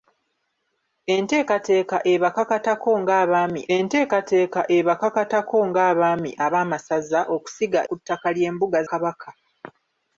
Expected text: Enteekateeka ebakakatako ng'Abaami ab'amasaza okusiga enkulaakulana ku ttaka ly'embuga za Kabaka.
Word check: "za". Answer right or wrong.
wrong